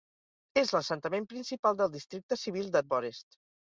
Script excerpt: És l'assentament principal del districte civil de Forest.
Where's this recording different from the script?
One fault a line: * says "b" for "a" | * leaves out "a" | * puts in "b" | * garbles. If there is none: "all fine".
all fine